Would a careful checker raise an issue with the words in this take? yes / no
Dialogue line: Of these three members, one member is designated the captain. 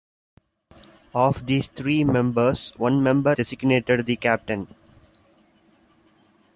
yes